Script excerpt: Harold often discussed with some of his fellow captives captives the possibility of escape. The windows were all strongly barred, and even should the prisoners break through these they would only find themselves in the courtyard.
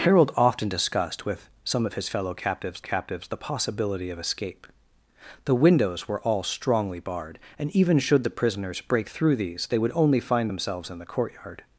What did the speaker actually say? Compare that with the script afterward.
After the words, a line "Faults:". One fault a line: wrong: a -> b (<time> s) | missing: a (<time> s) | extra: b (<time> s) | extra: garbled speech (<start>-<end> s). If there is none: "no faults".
Harold often discussed with some of his fellow captives captives the possibility of escape. The windows were all strongly barred, and even should the prisoners break through these they would only find themselves in the courtyard.
Faults:
no faults